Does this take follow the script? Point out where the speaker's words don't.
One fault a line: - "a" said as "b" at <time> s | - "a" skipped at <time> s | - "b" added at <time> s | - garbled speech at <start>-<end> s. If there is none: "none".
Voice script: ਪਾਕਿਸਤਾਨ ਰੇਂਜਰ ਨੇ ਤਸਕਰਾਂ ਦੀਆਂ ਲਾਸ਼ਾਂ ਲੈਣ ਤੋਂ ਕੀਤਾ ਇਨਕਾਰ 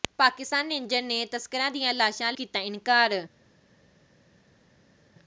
- "ਲੈਣ ਤੋਂ" skipped at 2.3 s